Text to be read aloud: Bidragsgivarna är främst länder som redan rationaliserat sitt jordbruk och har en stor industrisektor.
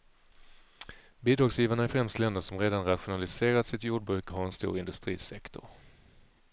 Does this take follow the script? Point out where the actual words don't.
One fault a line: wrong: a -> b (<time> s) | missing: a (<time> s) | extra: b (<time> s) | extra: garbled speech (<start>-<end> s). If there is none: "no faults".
missing: och (4.3 s)